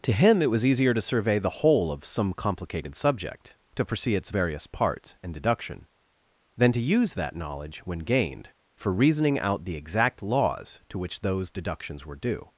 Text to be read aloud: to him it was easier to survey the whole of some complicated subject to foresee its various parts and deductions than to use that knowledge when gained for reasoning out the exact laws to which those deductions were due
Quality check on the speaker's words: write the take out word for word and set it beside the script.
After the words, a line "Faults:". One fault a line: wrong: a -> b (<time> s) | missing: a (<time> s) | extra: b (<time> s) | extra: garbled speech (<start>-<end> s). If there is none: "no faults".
to him it was easier to survey the whole of some complicated subject to foresee its various parts and deduction than to use that knowledge when gained for reasoning out the exact laws to which those deductions were due
Faults:
wrong: deductions -> deduction (5.3 s)